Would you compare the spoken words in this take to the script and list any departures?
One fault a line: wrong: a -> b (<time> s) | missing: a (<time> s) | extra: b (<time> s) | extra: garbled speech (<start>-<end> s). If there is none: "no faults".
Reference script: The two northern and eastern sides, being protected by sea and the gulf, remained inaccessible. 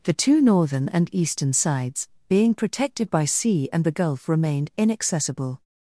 no faults